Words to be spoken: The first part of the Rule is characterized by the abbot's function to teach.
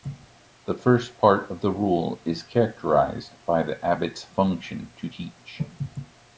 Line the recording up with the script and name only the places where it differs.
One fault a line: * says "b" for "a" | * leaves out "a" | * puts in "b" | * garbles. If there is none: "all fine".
all fine